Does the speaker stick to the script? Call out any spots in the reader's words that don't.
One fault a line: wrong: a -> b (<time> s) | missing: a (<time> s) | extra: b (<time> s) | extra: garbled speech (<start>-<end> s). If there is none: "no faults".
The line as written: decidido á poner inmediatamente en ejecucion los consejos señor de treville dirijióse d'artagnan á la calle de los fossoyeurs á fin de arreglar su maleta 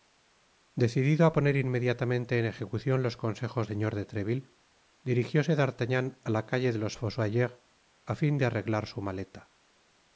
no faults